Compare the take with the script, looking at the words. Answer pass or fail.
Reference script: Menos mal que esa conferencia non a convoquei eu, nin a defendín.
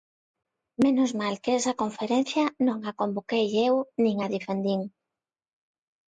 pass